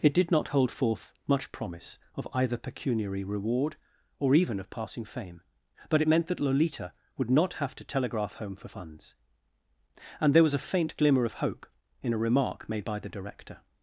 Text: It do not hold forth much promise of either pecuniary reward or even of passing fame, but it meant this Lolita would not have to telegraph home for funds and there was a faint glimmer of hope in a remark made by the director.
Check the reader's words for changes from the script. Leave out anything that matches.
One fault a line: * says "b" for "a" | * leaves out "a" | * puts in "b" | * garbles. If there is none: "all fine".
* says "did" for "do"
* says "that" for "this"